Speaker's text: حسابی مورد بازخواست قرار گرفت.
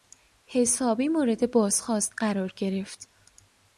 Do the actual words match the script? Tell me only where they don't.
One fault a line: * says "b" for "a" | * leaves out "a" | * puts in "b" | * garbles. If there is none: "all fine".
all fine